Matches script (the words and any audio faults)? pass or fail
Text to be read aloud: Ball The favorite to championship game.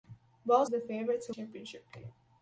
pass